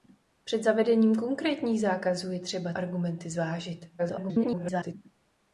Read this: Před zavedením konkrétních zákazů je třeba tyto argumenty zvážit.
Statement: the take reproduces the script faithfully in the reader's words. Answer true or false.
false